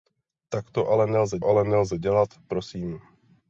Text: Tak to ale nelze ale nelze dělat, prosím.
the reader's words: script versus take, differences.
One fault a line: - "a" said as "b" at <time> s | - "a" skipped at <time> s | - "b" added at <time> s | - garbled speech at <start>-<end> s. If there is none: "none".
none